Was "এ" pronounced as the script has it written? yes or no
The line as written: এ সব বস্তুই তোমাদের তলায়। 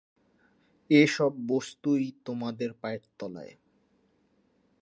yes